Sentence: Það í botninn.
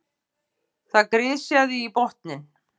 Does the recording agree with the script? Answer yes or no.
no